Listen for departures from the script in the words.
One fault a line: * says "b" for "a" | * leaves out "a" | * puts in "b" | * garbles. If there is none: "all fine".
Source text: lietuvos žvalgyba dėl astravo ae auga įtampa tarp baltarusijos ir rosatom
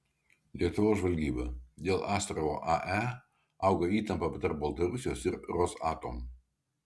all fine